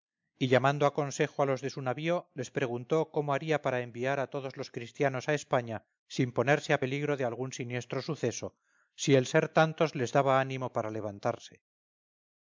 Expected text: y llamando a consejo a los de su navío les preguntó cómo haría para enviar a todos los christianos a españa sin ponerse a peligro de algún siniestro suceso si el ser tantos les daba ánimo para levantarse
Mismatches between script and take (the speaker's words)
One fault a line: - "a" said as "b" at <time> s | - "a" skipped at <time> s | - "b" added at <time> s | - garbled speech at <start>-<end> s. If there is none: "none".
none